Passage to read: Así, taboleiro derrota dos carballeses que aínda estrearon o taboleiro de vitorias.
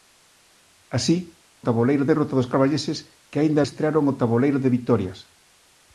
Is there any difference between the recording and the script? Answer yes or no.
no